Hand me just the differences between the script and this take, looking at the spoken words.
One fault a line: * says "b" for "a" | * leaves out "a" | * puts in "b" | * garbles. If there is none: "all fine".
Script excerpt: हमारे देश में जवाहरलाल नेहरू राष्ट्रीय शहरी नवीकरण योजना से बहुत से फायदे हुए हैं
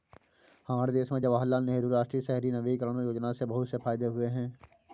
all fine